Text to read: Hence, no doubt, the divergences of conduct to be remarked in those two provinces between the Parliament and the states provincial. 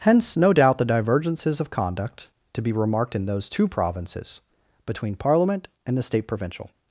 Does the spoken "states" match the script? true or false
false